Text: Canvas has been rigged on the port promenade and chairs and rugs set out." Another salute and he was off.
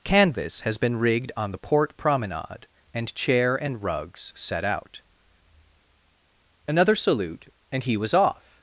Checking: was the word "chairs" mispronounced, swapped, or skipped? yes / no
yes